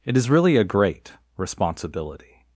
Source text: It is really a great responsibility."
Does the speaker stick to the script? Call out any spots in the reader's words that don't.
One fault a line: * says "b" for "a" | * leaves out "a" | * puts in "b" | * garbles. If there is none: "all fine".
all fine